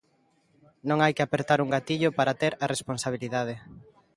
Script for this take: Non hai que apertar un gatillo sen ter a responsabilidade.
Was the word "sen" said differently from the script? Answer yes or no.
yes